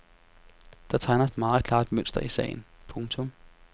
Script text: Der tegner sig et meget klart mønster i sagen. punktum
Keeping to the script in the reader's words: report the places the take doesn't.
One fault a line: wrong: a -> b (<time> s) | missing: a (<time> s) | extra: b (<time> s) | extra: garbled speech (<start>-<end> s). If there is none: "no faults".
missing: sig (1.3 s)